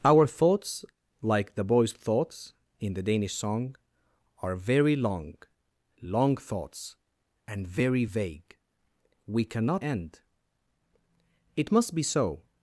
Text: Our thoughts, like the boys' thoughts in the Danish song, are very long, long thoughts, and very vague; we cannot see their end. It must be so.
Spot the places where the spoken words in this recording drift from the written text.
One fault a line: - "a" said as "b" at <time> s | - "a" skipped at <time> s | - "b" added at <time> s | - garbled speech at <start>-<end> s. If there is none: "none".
- "see their" skipped at 9.8 s